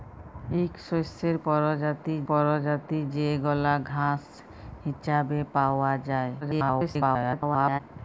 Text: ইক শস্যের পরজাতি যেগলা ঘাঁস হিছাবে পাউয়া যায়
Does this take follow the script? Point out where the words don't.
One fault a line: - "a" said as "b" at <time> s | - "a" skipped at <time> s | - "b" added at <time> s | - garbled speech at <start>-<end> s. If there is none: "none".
- "পরজাতি" added at 2.3 s
- garbled speech at 6.4-7.8 s